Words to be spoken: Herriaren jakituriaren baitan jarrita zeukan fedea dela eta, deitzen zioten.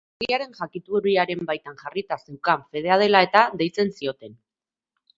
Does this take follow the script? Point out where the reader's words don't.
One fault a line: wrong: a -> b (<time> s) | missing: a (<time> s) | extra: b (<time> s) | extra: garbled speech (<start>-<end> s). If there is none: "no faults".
no faults